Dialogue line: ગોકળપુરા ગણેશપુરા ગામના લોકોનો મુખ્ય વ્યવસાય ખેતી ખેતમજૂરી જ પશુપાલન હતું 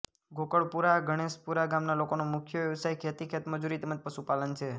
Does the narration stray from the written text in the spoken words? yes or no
yes